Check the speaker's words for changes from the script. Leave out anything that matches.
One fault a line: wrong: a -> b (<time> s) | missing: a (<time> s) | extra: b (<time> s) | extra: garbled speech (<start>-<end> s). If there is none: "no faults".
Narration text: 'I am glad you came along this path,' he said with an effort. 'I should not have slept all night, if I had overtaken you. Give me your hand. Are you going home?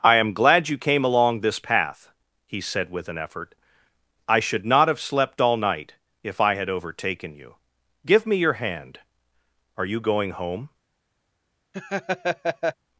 no faults